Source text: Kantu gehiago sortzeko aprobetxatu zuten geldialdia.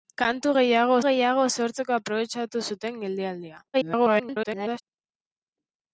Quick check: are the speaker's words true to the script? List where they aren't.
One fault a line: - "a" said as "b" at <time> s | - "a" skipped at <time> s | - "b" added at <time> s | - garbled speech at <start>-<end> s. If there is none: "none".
- "gehiago" added at 1.1 s
- garbled speech at 3.7-4.8 s